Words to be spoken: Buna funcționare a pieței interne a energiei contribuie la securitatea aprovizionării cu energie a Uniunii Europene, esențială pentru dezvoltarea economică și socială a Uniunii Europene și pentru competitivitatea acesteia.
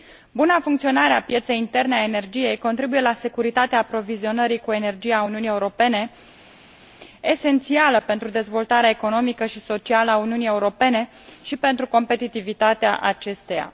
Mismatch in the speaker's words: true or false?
false